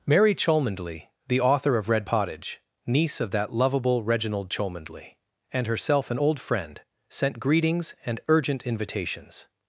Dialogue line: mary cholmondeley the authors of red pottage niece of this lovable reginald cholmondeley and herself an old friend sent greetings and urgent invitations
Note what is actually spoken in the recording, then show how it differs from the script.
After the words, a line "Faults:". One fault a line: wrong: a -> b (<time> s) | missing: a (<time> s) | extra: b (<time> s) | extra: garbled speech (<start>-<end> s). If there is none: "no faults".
mary cholmondeley the author of red pottage niece of that lovable reginald cholmondeley and herself an old friend sent greetings and urgent invitations
Faults:
wrong: authors -> author (1.4 s)
wrong: this -> that (3.3 s)